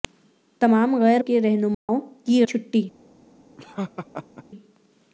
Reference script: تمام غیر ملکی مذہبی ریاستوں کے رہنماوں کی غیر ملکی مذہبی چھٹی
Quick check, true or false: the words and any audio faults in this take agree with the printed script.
false